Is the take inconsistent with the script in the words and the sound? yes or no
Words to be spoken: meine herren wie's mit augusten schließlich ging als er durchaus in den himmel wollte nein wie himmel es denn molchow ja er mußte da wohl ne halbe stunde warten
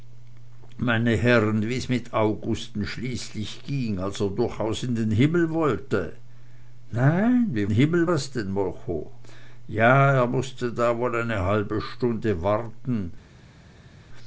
no